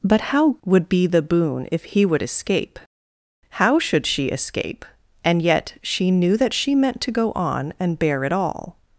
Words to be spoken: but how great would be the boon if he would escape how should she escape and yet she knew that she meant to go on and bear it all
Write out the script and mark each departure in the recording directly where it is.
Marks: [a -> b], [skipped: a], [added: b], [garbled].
but how [skipped: great] would be the boon if he would escape how should she escape and yet she knew that she meant to go on and bear it all